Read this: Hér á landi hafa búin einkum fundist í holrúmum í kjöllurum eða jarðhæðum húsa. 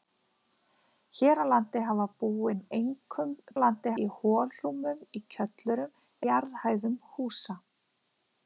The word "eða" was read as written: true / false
false